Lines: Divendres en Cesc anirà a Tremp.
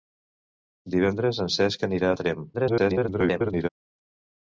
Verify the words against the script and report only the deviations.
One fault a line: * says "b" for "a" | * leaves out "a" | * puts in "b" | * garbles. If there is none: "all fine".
* garbles